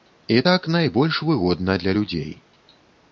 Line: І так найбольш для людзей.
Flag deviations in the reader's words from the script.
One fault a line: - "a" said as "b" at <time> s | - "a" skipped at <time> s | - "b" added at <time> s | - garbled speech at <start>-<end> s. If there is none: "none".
- "выгодна" added at 1.3 s